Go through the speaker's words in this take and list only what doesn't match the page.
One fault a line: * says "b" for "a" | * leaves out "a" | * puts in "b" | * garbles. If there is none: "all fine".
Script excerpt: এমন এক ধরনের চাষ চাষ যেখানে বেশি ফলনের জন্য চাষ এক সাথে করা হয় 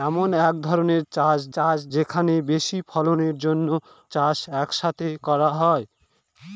all fine